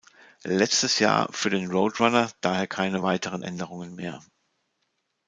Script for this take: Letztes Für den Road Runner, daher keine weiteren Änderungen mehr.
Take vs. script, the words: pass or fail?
fail